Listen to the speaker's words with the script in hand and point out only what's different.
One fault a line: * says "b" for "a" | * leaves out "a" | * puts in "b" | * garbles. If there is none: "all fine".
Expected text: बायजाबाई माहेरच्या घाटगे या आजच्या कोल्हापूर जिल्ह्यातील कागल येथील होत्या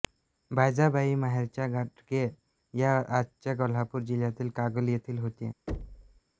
all fine